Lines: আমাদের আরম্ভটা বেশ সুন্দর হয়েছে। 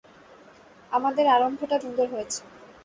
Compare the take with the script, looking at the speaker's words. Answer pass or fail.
fail